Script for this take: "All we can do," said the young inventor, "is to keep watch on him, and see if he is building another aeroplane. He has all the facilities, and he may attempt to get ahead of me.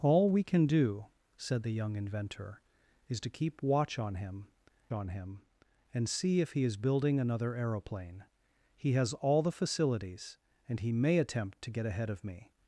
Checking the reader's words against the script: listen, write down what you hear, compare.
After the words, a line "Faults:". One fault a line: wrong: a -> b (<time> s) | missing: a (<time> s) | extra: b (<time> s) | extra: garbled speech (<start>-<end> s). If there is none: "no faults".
"All we can do," said the young inventor, "is to keep watch on him on him, and see if he is building another aeroplane. He has all the facilities, and he may attempt to get ahead of me.
Faults:
extra: on him (4.9 s)